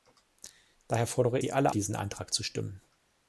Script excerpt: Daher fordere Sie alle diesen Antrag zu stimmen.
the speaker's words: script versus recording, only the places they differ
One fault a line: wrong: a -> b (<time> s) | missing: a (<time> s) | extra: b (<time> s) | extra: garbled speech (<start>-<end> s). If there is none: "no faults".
no faults